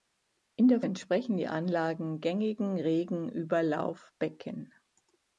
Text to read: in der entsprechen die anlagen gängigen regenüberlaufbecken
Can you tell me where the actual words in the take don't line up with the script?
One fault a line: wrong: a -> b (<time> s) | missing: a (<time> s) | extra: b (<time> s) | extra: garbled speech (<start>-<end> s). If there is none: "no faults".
no faults